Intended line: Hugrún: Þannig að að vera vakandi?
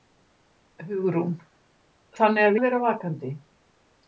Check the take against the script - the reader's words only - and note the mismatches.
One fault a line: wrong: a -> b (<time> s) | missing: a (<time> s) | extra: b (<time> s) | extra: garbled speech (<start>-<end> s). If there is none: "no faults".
no faults